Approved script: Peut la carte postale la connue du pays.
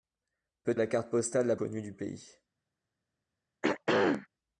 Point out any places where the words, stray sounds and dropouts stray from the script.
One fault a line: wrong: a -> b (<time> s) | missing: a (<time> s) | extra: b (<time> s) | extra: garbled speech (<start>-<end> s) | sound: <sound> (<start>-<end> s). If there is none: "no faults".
sound: throat clearing (3.6-4.3 s)